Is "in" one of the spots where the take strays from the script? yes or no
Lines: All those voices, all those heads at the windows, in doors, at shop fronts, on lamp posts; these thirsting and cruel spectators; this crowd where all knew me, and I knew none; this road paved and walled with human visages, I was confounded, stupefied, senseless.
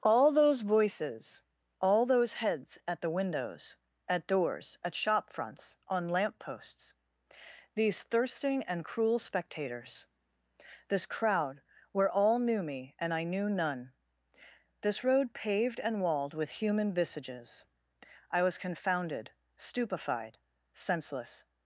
yes